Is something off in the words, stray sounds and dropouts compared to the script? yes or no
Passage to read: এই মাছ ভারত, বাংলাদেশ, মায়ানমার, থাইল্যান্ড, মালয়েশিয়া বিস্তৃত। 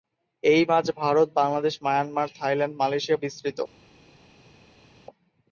no